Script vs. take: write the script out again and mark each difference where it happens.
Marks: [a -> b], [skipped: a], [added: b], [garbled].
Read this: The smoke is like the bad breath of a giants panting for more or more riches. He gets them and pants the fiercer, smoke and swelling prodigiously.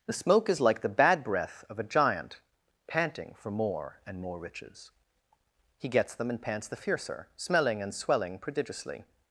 The smoke is like the bad breath of a [giants -> giant] panting for more [or -> and] more riches. He gets them and pants the fiercer, [smoke -> smelling] and swelling prodigiously.